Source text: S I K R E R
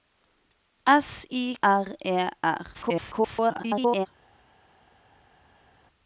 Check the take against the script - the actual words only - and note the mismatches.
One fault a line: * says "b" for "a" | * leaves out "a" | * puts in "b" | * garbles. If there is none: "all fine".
* leaves out "K"
* garbles